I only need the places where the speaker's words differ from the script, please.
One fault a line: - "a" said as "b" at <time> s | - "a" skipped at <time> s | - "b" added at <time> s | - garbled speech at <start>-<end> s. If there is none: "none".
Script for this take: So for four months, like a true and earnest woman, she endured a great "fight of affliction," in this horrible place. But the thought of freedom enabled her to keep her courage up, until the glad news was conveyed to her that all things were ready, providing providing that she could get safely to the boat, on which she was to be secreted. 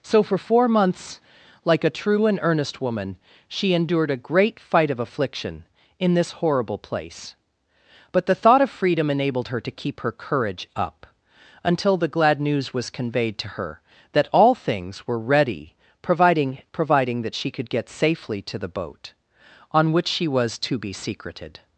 none